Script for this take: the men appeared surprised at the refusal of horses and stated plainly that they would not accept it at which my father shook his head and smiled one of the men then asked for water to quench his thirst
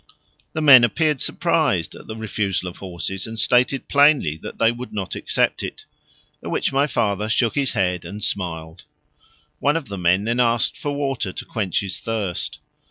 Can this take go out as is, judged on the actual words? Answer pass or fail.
pass